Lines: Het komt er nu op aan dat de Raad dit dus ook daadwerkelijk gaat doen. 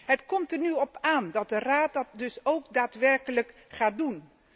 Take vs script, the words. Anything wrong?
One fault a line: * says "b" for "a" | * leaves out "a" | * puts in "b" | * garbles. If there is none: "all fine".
* says "dat" for "dit"